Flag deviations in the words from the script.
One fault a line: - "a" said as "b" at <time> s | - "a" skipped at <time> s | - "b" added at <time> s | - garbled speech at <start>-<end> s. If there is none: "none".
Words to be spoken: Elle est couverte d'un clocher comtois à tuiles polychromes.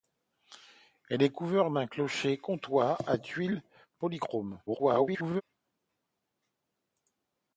- garbled speech at 4.7-5.4 s